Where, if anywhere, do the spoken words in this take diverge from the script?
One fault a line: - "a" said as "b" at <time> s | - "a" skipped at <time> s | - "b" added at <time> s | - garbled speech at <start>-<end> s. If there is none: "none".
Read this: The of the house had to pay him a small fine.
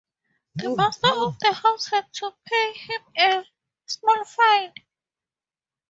- "master" added at 0.8 s